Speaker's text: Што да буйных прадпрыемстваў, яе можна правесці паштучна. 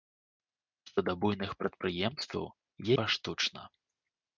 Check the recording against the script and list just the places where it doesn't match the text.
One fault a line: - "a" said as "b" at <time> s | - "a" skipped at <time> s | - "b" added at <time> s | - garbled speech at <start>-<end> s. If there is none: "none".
- "яе можна правесці" skipped at 2.4 s